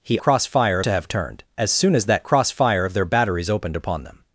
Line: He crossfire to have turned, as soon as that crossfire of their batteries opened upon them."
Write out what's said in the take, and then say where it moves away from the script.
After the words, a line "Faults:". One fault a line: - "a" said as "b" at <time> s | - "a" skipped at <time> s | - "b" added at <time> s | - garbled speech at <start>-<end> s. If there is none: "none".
He crossfire to have turned, as soon as that crossfire of their batteries opened upon them."
Faults:
none